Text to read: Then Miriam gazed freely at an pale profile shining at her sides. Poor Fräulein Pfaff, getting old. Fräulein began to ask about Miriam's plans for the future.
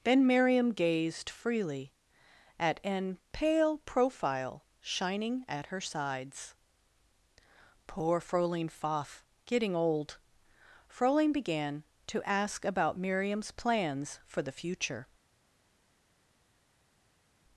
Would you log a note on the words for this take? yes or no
no